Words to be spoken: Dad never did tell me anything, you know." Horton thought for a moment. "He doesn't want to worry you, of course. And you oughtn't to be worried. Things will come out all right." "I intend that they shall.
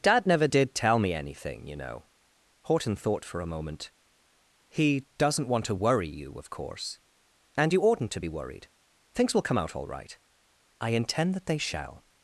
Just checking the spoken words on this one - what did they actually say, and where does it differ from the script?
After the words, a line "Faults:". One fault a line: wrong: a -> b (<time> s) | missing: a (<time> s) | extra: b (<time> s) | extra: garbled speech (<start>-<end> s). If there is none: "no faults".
Dad never did tell me anything, you know." Horton thought for a moment. "He doesn't want to worry you, of course. And you oughtn't to be worried. Things will come out all right." "I intend that they shall.
Faults:
no faults